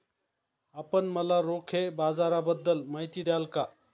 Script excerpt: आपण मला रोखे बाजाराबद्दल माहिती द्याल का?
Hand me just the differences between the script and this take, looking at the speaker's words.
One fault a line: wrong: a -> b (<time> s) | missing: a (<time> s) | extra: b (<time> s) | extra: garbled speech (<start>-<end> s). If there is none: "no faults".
no faults